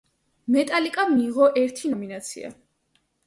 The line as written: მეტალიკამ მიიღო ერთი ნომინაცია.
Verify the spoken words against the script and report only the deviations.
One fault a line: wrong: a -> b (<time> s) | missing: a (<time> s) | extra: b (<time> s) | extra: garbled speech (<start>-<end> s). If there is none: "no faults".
no faults